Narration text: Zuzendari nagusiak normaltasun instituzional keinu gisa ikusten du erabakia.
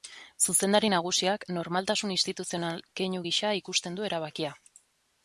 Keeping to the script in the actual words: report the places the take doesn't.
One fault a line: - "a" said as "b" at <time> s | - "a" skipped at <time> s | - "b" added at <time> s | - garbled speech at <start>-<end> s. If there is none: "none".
none